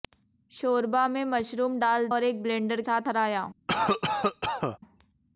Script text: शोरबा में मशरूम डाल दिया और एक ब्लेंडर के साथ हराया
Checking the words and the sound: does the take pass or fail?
fail